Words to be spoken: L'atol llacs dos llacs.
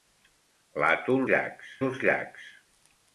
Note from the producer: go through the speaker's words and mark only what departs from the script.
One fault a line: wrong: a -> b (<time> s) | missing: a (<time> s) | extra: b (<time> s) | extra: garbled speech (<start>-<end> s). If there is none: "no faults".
no faults